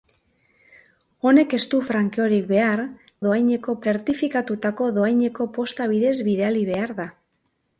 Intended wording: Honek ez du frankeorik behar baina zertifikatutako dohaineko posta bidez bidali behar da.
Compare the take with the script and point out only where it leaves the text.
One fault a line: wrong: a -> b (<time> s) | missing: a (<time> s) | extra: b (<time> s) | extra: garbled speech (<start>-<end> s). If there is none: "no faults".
wrong: baina -> dohaineko (3.3 s)